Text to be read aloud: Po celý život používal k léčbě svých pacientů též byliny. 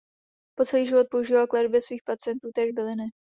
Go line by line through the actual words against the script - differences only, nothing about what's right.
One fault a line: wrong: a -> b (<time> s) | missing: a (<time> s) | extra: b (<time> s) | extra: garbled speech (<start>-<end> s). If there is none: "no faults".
no faults